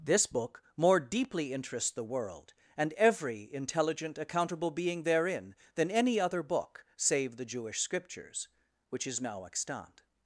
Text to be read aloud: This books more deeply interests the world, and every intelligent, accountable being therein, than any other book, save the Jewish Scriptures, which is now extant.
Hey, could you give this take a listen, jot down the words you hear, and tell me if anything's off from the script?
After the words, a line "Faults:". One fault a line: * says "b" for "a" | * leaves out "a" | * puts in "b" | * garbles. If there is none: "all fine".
This book more deeply interests the world, and every intelligent, accountable being therein, than any other book, save the Jewish Scriptures, which is now extant.
Faults:
* says "book" for "books"